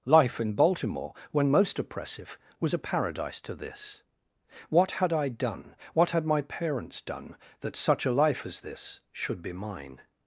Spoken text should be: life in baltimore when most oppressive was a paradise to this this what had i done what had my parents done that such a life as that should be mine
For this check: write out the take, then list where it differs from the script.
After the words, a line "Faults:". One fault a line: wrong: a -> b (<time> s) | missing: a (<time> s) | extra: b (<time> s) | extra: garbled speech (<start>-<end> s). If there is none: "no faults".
life in baltimore when most oppressive was a paradise to this what had i done what had my parents done that such a life as this should be mine
Faults:
missing: this (4.0 s)
wrong: that -> this (8.6 s)